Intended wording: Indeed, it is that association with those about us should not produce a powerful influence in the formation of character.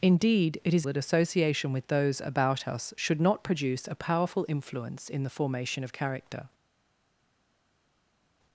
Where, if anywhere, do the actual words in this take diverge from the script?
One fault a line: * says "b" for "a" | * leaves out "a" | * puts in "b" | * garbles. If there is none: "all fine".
all fine